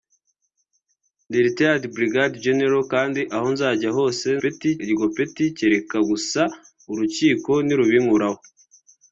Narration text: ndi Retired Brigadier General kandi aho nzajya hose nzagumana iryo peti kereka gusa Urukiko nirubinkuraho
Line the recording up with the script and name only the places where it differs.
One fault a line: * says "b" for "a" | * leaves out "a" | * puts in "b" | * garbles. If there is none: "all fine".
* says "peti" for "nzagumana"